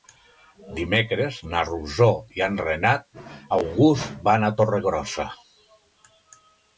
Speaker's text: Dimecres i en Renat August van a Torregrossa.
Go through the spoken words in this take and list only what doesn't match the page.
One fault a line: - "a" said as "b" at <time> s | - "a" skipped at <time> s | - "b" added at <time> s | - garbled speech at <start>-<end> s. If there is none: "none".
- "na Rosó" added at 1.5 s